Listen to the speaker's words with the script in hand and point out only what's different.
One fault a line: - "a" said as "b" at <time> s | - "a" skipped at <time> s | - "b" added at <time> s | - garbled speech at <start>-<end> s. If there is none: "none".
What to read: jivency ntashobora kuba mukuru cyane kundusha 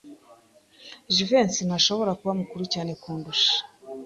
none